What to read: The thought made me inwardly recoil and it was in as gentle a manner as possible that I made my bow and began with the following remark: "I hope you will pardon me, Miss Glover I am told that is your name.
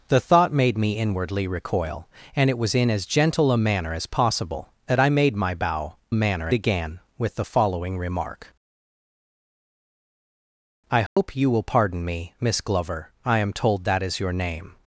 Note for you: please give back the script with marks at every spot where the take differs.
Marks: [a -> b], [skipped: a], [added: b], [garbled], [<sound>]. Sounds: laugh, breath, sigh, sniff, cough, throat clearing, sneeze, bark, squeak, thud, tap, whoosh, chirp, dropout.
The thought made me inwardly recoil and it was in as gentle a manner as possible that I made my bow [and -> manner] began with the following remark: "I hope [dropout] you will pardon me, Miss Glover I am told that is your name.